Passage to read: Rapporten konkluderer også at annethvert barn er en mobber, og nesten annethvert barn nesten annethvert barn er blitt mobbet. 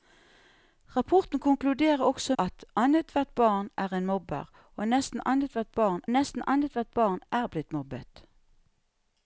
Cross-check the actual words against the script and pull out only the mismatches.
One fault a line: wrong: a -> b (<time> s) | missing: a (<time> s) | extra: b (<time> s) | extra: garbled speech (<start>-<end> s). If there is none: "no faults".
no faults